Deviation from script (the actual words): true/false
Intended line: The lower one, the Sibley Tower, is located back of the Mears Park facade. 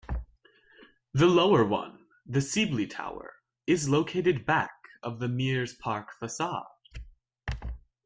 false